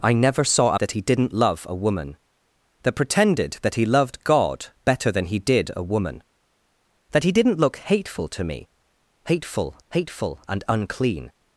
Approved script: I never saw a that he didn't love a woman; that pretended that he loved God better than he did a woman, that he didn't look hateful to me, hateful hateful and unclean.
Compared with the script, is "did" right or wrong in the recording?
right